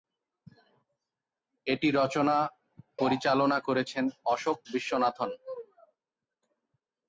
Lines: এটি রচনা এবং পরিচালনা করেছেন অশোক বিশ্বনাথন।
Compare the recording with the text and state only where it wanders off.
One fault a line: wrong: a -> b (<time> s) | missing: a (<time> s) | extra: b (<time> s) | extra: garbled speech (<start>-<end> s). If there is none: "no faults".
missing: এবং (2.4 s)